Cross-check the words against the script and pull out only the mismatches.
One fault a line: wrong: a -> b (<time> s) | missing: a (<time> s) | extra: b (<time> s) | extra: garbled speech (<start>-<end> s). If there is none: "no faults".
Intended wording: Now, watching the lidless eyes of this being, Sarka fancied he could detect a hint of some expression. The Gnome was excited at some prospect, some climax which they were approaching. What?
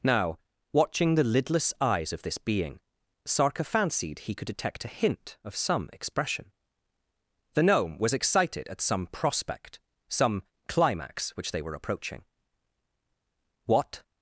no faults